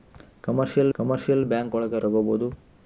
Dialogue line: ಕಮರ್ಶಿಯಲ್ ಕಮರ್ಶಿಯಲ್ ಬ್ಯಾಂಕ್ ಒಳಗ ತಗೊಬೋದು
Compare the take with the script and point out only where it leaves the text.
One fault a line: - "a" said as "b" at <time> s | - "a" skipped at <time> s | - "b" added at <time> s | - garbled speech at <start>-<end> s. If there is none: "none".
none